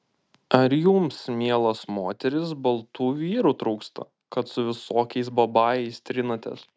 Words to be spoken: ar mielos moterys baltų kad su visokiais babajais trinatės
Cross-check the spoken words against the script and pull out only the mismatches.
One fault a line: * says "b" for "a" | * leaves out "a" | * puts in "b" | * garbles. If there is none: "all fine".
* puts in "jums"
* puts in "vyrų trūksta"